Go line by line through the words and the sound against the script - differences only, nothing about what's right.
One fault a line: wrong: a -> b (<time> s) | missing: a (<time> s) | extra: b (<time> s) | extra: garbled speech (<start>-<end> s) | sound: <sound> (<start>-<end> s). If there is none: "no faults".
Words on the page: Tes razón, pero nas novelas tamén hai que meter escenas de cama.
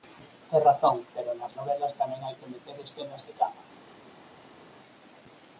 no faults